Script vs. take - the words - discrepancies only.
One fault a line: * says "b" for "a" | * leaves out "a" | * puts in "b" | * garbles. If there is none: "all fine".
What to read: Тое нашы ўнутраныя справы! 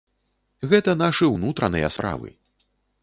* says "Гэта" for "Тое"